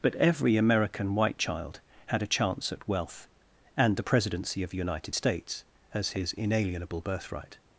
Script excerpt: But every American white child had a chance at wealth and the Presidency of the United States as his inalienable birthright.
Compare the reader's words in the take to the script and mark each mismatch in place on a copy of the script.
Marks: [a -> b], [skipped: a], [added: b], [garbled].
But every American white child had a chance at wealth and the Presidency of the United States as his inalienable birthright.